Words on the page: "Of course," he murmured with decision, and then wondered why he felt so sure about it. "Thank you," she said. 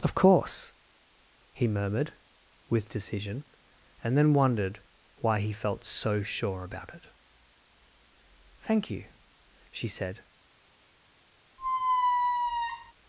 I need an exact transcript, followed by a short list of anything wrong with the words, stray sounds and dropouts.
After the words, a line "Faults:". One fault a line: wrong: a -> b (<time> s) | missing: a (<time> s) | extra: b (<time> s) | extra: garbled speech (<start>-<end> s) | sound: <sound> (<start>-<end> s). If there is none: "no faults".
"Of course," he murmured with decision, and then wondered why he felt so sure about it. "Thank you," she said.
Faults:
sound: squeak (11.6-12.9 s)